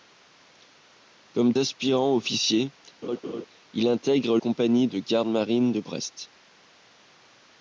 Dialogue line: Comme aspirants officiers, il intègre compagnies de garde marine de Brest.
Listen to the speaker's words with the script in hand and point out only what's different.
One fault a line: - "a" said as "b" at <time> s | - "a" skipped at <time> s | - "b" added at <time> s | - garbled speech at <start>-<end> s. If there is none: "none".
none